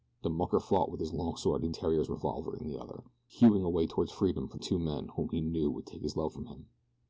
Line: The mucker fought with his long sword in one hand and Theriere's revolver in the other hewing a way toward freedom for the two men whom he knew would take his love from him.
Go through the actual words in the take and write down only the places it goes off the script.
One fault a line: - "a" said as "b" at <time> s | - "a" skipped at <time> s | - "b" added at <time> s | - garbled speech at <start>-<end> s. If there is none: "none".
- "one hand and" skipped at 1.8 s
- "the" skipped at 4.6 s